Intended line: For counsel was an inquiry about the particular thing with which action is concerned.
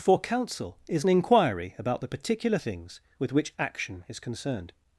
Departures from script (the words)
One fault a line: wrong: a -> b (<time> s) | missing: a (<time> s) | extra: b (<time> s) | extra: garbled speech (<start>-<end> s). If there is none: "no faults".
wrong: was -> is (0.9 s)
wrong: thing -> things (2.5 s)